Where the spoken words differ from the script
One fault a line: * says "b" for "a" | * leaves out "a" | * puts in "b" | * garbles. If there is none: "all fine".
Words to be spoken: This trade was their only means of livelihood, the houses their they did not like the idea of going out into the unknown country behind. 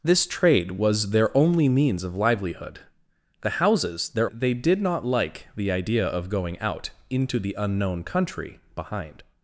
all fine